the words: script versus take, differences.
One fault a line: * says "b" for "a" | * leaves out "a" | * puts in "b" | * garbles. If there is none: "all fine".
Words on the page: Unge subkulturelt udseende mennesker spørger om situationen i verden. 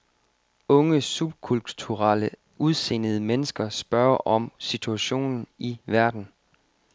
all fine